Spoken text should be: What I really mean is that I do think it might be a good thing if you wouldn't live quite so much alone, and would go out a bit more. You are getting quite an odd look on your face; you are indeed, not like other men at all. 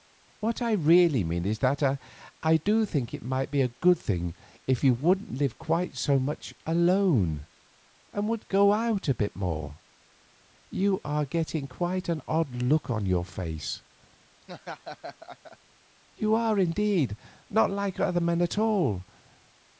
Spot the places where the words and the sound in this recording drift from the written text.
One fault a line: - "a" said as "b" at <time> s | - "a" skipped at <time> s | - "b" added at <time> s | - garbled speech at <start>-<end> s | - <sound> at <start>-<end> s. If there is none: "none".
- laugh at 14.4-15.6 s